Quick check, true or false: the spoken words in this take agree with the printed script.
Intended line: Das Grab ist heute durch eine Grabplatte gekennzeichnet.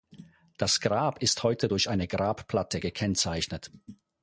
true